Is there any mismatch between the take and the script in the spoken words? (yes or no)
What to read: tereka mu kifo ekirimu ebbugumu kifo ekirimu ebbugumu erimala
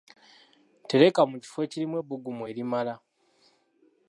yes